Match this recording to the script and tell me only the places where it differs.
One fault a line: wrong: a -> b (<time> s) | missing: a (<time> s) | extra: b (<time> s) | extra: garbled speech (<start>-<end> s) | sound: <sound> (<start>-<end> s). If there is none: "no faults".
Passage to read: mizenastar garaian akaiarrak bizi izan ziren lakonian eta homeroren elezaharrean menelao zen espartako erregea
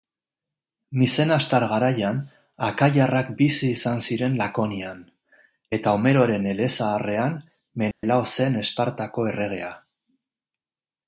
sound: dropout (7.9-8.0 s)